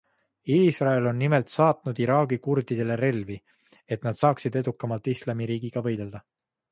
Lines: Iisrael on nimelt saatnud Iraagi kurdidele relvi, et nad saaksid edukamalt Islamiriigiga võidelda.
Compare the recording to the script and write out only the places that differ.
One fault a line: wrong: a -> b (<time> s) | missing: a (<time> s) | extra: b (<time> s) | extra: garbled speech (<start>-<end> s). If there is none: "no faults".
no faults